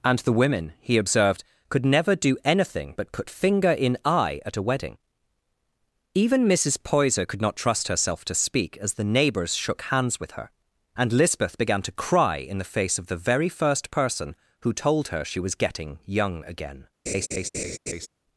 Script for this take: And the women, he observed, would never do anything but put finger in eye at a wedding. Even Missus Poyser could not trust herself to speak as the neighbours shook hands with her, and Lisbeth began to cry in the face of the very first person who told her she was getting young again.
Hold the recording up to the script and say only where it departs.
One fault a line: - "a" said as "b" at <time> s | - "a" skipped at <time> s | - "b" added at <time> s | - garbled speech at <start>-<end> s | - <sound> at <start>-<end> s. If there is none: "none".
- "would" said as "could" at 1.7 s
- laugh at 17.1-18.1 s